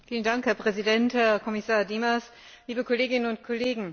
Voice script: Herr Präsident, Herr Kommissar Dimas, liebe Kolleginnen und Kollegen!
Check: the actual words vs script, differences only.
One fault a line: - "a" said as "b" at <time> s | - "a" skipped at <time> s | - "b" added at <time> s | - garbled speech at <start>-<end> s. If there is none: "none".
none